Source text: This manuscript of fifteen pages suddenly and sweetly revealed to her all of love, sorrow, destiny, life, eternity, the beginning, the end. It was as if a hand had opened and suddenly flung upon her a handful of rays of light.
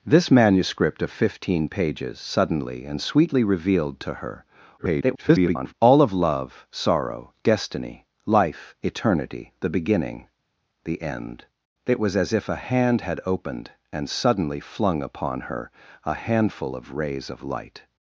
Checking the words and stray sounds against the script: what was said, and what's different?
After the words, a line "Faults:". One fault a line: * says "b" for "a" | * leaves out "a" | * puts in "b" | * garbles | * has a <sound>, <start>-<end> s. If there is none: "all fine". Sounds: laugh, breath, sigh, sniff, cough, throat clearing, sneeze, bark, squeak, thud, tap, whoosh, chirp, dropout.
This manuscript of fifteen pages suddenly and sweetly revealed to her [garbled] all of love, sorrow, destiny, life, eternity, the beginning, the end. It was as if a hand had opened and suddenly flung upon her a handful of rays of light.
Faults:
* garbles